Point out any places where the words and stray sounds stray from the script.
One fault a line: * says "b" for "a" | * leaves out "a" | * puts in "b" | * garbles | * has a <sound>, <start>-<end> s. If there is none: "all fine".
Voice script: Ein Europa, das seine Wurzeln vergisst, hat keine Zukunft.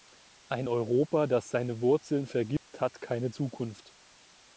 * has a dropout, 2.6-2.7 s